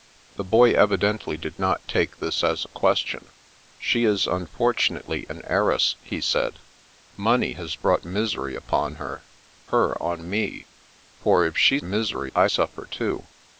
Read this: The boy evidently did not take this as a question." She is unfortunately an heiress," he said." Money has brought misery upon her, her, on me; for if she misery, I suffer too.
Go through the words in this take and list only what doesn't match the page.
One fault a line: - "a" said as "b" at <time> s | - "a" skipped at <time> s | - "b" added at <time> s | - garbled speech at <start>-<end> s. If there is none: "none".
none